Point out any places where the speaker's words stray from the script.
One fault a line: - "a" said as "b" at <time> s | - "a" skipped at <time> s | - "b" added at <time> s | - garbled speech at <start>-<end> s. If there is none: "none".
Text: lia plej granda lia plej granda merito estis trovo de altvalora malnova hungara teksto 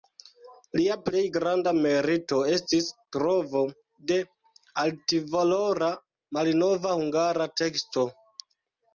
- "lia plej granda" skipped at 1.7 s